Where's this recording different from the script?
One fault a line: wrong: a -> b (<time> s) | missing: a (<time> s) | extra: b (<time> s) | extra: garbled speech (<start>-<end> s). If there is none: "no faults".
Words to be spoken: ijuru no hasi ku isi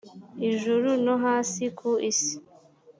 no faults